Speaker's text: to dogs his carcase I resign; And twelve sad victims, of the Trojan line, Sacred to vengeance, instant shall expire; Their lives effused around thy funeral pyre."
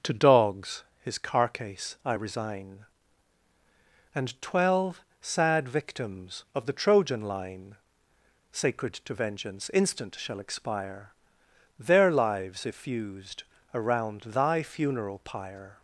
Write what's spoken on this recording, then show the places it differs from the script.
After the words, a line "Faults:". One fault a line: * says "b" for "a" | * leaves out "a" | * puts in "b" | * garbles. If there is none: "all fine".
to dogs his carcase I resign; And twelve sad victims, of the Trojan line, Sacred to vengeance, instant shall expire; Their lives effused around thy funeral pyre."
Faults:
all fine